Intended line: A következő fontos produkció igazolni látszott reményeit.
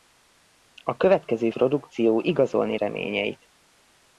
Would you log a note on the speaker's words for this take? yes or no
yes